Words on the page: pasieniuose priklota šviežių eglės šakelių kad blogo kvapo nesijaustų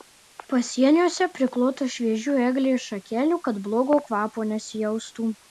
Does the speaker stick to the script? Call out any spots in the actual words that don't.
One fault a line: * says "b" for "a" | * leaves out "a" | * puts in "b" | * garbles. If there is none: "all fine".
all fine